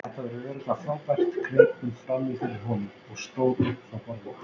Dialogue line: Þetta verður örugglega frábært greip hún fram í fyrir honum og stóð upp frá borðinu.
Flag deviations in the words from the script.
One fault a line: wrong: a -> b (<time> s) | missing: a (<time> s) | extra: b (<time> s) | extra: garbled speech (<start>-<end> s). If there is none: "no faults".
no faults